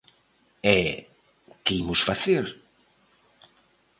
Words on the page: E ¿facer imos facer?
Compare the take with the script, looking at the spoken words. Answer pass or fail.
fail